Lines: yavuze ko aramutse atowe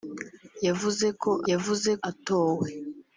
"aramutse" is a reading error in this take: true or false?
true